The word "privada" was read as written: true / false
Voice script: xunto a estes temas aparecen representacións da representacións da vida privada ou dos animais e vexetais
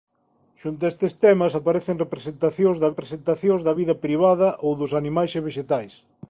true